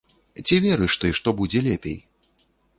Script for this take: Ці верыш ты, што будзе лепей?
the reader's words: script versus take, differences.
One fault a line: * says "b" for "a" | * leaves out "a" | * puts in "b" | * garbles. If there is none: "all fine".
all fine